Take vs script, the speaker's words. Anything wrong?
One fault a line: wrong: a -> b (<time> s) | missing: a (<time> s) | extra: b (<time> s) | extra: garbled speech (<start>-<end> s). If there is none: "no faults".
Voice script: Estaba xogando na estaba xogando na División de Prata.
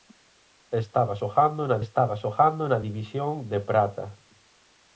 no faults